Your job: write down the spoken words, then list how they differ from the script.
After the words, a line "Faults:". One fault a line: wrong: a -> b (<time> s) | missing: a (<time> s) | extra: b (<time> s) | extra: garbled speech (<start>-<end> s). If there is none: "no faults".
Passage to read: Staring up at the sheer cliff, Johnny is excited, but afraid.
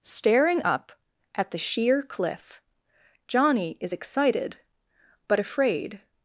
Staring up at the sheer cliff, Johnny is excited, but afraid.
Faults:
no faults